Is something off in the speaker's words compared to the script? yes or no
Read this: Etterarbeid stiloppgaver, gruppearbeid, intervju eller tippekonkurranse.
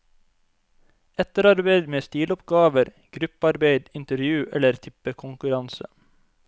yes